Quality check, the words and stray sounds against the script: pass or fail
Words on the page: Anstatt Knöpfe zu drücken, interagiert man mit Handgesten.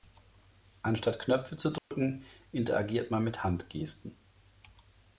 fail